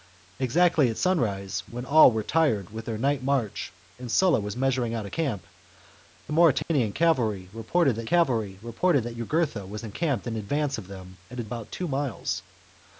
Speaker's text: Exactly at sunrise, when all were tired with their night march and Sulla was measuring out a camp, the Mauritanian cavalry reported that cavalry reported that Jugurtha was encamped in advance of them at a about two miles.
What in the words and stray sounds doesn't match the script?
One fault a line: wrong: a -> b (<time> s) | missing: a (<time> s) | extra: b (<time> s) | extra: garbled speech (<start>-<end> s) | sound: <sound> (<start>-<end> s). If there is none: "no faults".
sound: dropout (6.6-6.7 s)